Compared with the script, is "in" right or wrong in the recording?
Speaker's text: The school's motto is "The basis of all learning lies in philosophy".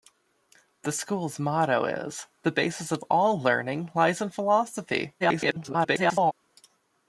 right